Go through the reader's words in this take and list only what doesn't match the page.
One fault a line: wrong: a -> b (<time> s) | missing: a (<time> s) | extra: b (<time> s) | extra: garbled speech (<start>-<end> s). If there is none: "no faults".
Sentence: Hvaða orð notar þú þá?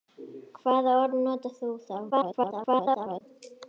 extra: garbled speech (2.1-3.2 s)